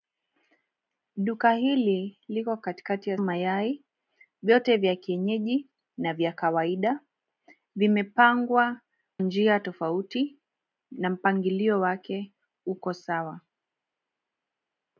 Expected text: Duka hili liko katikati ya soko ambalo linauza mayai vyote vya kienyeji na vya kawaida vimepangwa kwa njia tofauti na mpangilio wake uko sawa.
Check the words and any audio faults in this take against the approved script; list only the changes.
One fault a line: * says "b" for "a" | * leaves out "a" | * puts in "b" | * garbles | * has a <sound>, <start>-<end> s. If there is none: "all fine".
* leaves out "soko ambalo linauza"
* leaves out "kwa"